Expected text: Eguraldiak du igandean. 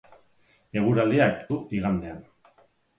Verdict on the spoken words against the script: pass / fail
pass